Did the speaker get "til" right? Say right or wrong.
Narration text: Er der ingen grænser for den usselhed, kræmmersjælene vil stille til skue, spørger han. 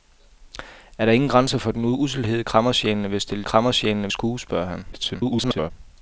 wrong